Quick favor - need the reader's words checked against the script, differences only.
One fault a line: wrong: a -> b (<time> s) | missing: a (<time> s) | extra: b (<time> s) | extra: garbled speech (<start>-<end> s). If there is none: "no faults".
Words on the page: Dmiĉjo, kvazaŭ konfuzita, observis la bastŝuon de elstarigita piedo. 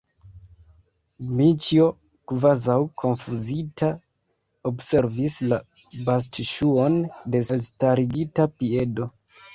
no faults